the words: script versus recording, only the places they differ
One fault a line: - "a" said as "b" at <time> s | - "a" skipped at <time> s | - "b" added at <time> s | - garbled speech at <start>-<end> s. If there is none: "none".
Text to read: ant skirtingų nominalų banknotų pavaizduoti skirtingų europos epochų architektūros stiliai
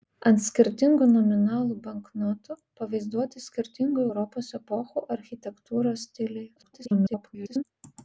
- garbled speech at 6.6-7.6 s